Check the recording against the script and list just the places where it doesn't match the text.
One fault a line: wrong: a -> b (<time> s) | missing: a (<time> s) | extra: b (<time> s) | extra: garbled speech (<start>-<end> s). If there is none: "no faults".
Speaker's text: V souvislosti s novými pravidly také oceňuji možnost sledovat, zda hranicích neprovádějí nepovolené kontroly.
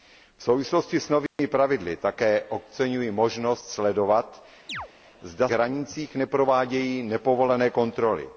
no faults